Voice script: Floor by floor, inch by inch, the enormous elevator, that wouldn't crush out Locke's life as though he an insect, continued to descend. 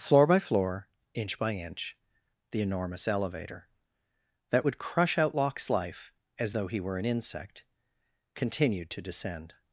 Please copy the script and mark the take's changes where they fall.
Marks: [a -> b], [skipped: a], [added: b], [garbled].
Floor by floor, inch by inch, the enormous elevator, that [wouldn't -> would] crush out Locke's life as though he [added: were] an insect, continued to descend.